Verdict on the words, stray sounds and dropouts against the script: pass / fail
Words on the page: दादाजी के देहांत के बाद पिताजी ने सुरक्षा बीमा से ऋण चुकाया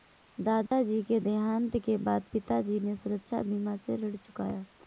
fail